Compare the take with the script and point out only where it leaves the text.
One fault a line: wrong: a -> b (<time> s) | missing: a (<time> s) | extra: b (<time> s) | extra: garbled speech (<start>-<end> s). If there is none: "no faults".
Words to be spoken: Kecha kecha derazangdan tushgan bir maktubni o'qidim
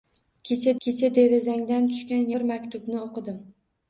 no faults